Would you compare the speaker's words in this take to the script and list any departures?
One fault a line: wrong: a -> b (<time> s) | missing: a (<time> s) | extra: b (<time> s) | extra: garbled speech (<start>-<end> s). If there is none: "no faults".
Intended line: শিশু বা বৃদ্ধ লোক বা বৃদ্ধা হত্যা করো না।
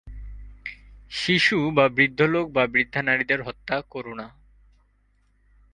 extra: নারীদের (3.0 s)